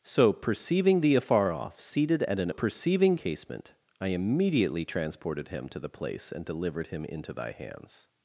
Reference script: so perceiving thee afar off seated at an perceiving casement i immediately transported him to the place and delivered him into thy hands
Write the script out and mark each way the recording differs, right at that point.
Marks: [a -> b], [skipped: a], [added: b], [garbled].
so perceiving thee afar off seated at an perceiving casement i immediately transported him to the place and delivered him into thy hands